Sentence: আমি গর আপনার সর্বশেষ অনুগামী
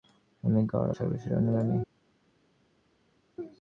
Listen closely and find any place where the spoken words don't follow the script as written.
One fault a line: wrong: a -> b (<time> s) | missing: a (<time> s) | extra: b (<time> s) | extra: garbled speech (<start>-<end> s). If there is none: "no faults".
missing: আপনার (0.9 s)